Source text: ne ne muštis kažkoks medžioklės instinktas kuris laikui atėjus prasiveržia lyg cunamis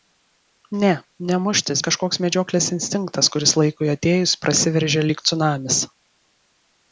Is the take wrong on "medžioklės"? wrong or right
right